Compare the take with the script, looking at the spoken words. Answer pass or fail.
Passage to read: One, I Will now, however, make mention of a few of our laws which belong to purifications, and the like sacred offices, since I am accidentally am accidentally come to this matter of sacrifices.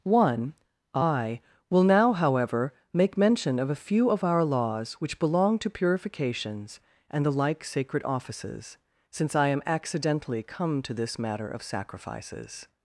fail